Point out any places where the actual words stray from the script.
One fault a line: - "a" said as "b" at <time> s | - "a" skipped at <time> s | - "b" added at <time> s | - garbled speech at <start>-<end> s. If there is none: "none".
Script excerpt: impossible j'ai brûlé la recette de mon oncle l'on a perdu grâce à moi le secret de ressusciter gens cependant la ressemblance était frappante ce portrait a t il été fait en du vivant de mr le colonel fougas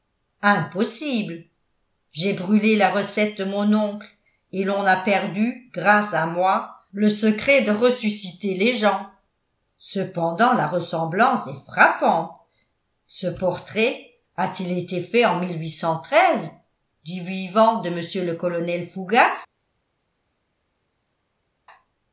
- "et" added at 4.5 s
- "les" added at 8.6 s
- "était" said as "est" at 11.5 s